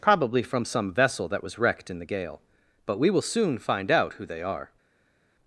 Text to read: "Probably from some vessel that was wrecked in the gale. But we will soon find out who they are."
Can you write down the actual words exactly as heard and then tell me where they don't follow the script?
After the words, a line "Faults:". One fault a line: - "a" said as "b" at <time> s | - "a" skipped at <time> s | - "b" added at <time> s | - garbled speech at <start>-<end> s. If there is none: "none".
"Probably from some vessel that was wrecked in the gale. But we will soon find out who they are."
Faults:
none